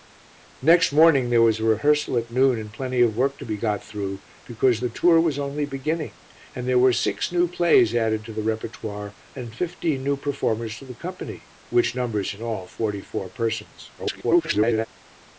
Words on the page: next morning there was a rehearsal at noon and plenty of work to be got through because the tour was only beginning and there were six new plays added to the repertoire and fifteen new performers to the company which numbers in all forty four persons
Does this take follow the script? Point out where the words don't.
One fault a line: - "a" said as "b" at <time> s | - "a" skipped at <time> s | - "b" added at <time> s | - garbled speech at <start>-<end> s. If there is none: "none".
- garbled speech at 14.0-14.9 s